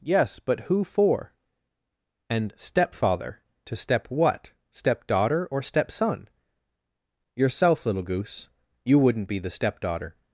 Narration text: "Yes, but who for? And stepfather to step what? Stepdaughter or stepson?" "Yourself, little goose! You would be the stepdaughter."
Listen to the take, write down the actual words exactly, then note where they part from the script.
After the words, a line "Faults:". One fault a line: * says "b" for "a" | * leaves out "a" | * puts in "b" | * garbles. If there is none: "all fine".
"Yes, but who for? And stepfather to step what? Stepdaughter or stepson?" "Yourself, little goose! You wouldn't be the stepdaughter."
Faults:
* says "wouldn't" for "would"